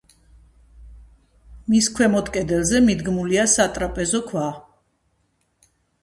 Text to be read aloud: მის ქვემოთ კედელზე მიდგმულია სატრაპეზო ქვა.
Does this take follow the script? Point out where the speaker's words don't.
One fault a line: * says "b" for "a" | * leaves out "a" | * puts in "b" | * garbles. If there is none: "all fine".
all fine